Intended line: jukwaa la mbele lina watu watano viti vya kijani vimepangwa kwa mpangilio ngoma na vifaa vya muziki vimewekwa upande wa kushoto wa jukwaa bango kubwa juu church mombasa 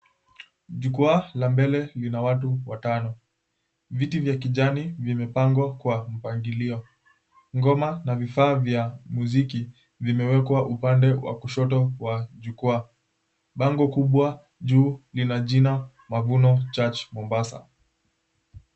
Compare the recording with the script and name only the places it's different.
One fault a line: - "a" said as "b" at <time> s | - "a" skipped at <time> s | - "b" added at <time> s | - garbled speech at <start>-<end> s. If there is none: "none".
- "lina jina mavuno" added at 15.1 s